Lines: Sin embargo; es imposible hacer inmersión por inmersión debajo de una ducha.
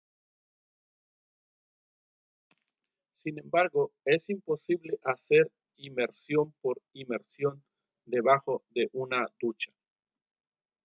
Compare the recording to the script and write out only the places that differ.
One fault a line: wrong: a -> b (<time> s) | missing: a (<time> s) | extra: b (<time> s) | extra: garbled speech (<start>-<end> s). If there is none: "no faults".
no faults